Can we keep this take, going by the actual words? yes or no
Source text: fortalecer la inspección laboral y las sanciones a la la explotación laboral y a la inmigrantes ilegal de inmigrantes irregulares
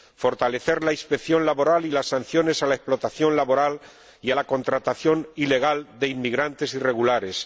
no